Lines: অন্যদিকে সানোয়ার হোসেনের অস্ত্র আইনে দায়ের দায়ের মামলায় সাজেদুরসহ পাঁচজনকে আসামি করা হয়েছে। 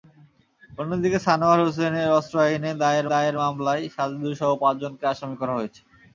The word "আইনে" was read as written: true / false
true